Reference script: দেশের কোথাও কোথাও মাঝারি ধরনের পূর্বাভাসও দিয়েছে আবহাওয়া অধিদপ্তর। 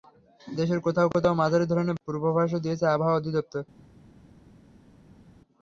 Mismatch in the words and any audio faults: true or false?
false